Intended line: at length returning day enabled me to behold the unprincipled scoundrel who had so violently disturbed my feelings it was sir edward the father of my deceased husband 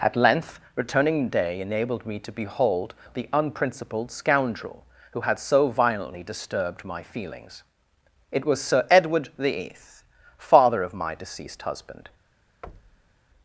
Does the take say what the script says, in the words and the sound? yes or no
no